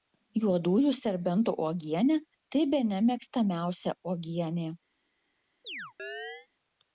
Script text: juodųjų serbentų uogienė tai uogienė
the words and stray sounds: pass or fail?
fail